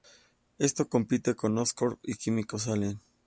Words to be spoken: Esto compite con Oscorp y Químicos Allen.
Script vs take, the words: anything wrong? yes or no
no